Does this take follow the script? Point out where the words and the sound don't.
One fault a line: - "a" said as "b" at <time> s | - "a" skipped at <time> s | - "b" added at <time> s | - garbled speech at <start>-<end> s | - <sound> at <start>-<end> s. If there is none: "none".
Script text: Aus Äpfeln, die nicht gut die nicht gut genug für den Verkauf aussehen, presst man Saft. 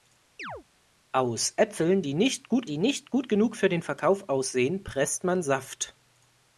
- chirp at 0.4-0.6 s